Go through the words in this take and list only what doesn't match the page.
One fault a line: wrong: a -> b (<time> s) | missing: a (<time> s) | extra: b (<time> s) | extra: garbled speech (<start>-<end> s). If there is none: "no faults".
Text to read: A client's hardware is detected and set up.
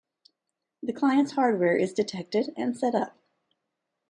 wrong: A -> The (0.8 s)